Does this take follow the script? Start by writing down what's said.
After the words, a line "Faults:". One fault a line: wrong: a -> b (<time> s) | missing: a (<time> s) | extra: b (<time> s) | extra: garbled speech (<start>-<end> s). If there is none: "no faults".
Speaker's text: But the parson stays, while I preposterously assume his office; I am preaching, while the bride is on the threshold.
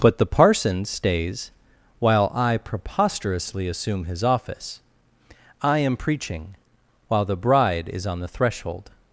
But the parson stays, while I preposterously assume his office; I am preaching, while the bride is on the threshold.
Faults:
no faults